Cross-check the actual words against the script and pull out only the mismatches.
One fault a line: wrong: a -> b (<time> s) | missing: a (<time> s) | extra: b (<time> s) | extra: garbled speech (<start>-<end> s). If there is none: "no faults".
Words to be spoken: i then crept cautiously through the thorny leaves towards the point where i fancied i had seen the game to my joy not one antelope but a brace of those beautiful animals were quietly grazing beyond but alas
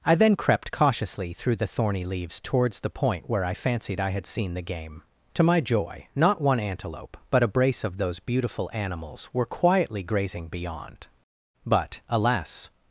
no faults